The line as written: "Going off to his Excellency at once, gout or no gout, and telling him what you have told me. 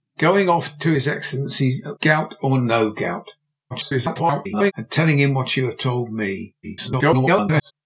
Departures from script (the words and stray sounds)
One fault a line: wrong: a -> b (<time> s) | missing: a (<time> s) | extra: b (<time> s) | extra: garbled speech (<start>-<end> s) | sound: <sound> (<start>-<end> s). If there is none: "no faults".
missing: once (2.0 s)
extra: garbled speech (3.7-4.7 s)
extra: garbled speech (6.6-7.7 s)